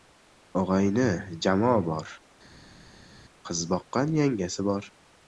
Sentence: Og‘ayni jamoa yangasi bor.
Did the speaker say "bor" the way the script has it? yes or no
yes